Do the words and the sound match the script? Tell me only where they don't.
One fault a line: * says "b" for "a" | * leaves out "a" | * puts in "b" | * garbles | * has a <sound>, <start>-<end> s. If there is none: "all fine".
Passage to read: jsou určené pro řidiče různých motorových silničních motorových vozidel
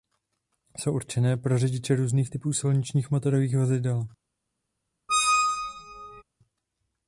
* says "typů" for "motorových"
* has a squeak, 5.1-6.2 s